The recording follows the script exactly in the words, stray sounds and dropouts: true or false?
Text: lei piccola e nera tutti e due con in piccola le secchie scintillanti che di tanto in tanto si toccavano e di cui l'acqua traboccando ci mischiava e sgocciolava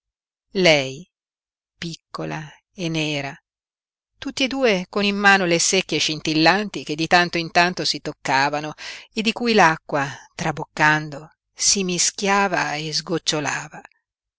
false